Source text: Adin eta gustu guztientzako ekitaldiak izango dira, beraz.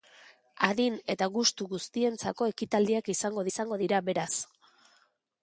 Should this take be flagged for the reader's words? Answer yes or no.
yes